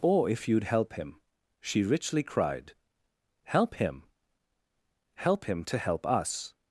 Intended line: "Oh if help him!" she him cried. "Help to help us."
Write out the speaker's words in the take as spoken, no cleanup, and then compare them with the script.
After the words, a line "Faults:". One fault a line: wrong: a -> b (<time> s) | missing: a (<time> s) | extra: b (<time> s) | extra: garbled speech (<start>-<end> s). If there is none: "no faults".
"Oh if you'd help him!" she richly cried. "Help him?" "Help him to help us."
Faults:
extra: you'd (0.5 s)
wrong: him -> richly (1.8 s)
extra: him Help him (3.8 s)